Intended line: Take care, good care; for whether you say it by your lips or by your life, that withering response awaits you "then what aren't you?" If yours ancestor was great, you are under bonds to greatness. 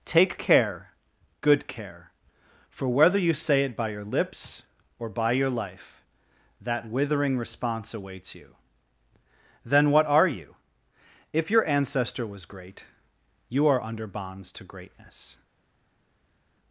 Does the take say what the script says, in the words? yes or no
no